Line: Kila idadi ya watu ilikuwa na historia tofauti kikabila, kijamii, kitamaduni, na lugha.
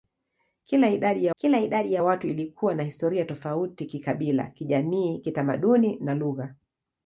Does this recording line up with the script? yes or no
no